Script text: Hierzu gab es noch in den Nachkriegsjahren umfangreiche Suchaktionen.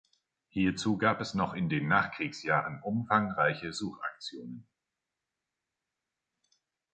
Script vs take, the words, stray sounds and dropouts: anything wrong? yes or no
no